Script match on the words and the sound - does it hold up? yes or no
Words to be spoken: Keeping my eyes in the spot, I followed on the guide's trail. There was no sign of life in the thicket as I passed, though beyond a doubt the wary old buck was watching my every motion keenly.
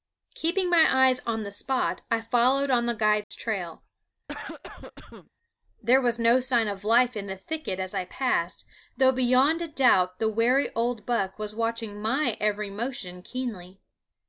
no